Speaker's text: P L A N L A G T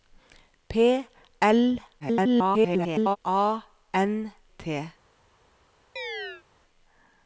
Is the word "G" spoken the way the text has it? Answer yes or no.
no